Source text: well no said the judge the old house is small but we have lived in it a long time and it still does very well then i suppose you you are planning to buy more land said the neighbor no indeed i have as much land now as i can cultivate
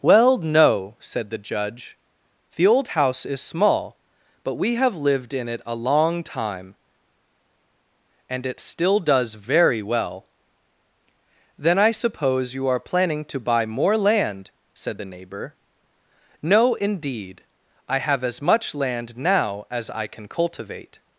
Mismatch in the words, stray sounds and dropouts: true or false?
true